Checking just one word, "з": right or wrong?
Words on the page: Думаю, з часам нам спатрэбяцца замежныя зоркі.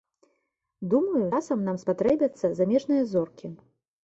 wrong